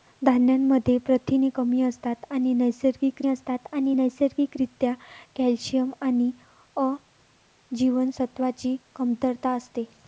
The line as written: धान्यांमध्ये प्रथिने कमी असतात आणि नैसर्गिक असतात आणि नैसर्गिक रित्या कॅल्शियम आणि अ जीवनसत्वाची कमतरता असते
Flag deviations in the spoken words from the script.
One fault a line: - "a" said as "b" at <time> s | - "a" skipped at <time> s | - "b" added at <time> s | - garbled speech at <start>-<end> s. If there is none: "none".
none